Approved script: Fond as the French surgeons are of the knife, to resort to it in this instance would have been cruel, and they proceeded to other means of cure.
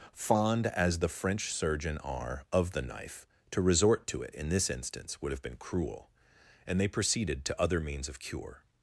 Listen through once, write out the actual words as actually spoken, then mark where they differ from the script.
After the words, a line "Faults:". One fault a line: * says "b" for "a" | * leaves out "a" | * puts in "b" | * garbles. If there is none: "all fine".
Fond as the French surgeon are of the knife, to resort to it in this instance would have been cruel, and they proceeded to other means of cure.
Faults:
* says "surgeon" for "surgeons"